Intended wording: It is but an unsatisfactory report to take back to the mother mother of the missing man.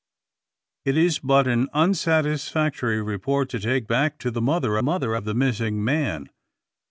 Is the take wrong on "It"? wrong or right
right